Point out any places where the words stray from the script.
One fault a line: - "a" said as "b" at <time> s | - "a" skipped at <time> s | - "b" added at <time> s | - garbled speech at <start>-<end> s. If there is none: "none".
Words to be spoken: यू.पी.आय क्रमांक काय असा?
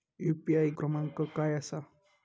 none